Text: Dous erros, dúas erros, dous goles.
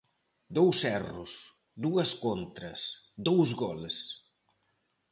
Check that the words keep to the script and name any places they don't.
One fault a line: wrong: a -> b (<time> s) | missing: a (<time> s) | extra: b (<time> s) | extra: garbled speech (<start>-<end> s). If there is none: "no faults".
wrong: erros -> contras (2.2 s)